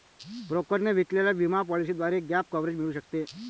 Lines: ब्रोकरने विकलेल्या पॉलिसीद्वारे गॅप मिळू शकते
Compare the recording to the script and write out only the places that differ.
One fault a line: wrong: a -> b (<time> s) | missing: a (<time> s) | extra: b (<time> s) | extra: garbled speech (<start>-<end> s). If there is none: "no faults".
extra: विमा (1.4 s)
extra: कव्हरेज (2.5 s)